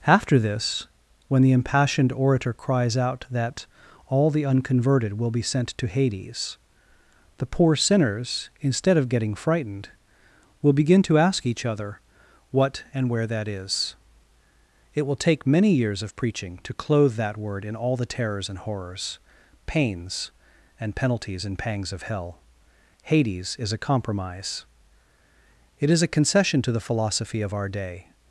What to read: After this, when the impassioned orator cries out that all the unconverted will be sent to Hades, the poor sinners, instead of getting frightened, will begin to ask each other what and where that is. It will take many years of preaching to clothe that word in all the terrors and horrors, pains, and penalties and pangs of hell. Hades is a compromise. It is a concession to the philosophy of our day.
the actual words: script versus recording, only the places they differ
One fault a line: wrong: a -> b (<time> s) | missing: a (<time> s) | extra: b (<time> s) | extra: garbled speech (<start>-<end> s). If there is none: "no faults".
no faults